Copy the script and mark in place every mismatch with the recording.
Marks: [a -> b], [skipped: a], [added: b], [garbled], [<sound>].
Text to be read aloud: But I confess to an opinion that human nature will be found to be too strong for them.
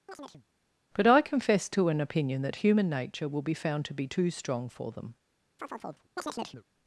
[chirp] But I confess to an opinion that human nature will be found to be too strong for them. [chirp]